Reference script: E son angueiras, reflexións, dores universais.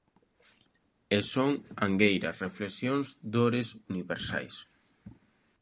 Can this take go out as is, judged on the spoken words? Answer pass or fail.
pass